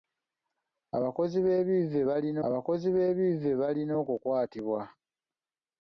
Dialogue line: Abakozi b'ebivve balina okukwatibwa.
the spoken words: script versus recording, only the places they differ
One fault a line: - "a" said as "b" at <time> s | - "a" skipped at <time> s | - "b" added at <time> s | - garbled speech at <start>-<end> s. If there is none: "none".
- "abakozi b'ebivve balina" added at 2.5 s